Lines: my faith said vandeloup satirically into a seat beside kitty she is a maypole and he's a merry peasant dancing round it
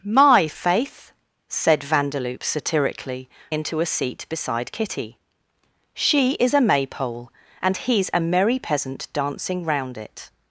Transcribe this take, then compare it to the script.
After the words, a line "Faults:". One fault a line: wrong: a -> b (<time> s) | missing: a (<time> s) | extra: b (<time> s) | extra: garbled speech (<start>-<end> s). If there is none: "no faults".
my faith said vandeloup satirically into a seat beside kitty she is a maypole and he's a merry peasant dancing round it
Faults:
no faults